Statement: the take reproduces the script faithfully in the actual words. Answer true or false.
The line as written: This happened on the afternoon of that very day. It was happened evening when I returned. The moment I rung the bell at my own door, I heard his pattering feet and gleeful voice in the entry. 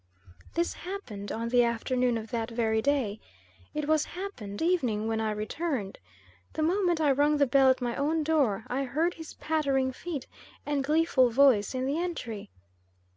true